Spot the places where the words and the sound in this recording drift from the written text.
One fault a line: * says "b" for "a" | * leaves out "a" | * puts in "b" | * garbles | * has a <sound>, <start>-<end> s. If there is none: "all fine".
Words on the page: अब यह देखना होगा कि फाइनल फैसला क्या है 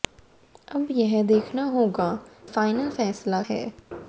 * leaves out "कि"
* leaves out "क्या"